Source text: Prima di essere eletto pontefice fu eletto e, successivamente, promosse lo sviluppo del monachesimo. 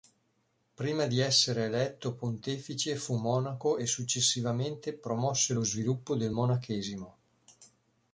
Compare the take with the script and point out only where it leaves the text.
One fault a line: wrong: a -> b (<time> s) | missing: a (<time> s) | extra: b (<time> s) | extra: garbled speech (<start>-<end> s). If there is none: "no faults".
wrong: eletto -> monaco (3.2 s)